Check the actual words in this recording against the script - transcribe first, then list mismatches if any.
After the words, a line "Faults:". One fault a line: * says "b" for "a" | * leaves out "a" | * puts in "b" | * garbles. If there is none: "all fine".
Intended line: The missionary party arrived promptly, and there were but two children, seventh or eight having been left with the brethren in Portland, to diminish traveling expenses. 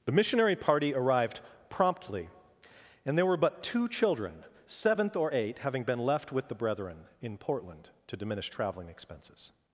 The missionary party arrived promptly, and there were but two children, seventh or eight having been left with the brethren in Portland, to diminish traveling expenses.
Faults:
all fine